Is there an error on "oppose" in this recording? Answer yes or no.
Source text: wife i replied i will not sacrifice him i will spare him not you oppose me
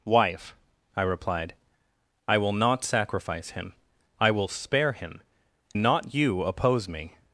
no